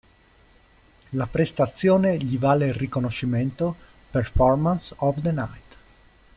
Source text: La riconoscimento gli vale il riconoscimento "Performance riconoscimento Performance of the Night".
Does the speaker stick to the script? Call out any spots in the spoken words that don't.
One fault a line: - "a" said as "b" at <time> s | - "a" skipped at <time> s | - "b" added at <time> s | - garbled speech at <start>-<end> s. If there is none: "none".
- "riconoscimento" said as "prestazione" at 1.3 s
- "riconoscimento Performance" skipped at 5.0 s